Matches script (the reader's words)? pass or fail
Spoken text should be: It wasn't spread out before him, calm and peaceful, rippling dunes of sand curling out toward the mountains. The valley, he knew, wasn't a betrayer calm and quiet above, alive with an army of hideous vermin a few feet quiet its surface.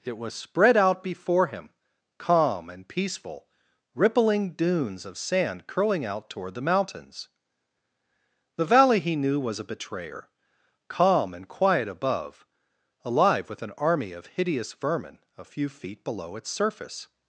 fail